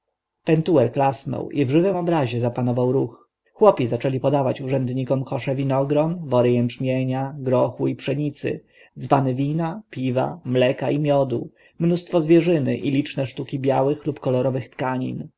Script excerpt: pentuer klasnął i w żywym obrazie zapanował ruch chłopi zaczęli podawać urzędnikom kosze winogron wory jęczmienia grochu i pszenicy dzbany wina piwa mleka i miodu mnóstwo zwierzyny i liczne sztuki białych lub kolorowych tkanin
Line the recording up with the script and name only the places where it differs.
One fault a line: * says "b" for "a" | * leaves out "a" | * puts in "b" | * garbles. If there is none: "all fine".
all fine